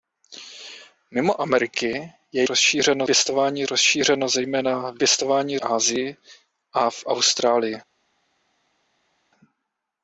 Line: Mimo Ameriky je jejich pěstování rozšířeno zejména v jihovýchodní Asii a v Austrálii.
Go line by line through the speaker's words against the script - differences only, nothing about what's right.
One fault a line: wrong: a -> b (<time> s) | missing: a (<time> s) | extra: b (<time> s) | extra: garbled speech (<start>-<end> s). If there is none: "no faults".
wrong: jejich -> rozšířeno (2.4 s)
wrong: jihovýchodní -> pěstování (5.0 s)